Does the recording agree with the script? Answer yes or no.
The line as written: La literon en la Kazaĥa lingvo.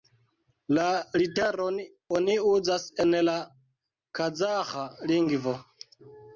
no